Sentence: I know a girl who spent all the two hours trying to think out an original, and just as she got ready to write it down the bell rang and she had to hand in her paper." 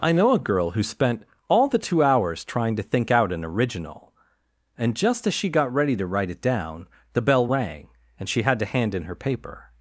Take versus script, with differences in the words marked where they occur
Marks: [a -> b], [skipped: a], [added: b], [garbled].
I know a girl who spent all the two hours trying to think out an original, and just as she got ready to write it down the bell rang and she had to hand in her paper."